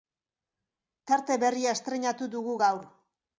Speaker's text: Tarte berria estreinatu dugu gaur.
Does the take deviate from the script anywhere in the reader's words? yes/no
no